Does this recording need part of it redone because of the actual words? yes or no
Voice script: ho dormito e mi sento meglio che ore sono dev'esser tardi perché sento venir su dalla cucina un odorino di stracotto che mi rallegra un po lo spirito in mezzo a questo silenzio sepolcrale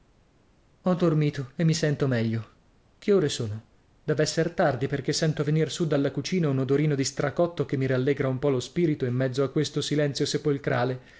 no